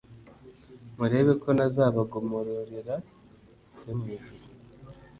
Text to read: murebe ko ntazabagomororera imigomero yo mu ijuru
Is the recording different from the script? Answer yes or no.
yes